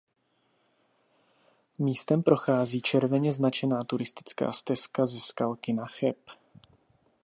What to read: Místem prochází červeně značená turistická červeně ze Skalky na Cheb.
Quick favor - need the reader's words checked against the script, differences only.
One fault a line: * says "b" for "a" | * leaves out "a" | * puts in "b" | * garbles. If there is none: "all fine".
* says "stezka" for "červeně"